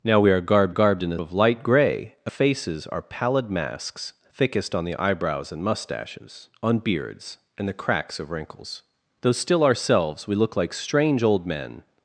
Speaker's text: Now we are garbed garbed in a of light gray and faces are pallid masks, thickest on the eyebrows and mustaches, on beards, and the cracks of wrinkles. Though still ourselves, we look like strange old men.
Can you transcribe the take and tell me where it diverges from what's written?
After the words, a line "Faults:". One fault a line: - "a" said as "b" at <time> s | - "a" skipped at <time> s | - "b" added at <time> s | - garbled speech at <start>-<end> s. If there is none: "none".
Now we are garbed garbed in a of light gray and faces are pallid masks, thickest on the eyebrows and mustaches, on beards, and the cracks of wrinkles. Though still ourselves, we look like strange old men.
Faults:
none